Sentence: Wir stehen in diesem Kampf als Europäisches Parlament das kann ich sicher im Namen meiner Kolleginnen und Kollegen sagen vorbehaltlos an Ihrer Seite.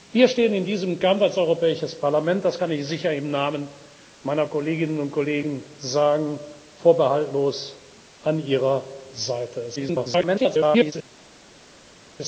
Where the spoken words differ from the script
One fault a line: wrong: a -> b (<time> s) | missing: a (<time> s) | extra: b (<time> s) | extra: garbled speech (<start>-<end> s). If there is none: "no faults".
extra: garbled speech (9.8-10.9 s)